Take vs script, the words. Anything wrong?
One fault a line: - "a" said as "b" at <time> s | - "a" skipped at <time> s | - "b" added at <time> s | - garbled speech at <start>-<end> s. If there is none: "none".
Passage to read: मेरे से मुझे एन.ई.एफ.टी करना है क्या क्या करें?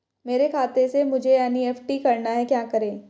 - "खाते" added at 0.5 s
- "क्या" skipped at 2.6 s